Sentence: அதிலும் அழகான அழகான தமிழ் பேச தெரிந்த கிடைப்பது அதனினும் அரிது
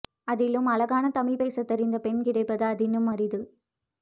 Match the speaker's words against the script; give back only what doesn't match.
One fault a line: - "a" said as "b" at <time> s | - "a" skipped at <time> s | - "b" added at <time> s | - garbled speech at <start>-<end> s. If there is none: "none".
- "அழகான" skipped at 1.1 s
- "பெண்" added at 2.0 s